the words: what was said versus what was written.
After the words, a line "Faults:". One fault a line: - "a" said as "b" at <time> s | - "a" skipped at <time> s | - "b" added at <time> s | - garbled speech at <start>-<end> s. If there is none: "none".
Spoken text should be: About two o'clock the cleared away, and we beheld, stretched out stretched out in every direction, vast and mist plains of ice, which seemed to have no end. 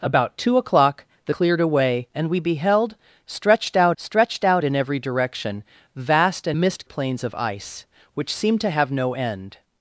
About two o'clock the cleared away, and we beheld, stretched out stretched out in every direction, vast and mist plains of ice, which seemed to have no end.
Faults:
none